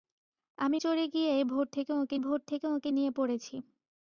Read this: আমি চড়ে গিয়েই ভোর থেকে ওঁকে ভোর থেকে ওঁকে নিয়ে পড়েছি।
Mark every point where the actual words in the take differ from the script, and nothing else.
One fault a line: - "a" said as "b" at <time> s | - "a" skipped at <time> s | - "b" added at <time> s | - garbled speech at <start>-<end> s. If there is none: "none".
none